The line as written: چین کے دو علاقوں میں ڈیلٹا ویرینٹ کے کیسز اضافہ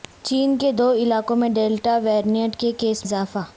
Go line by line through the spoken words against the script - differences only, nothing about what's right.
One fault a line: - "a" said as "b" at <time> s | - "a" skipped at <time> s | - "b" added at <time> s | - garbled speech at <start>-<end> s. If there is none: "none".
none